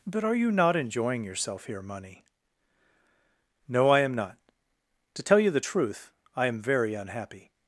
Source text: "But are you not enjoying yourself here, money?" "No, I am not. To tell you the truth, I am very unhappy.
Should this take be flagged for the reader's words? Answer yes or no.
no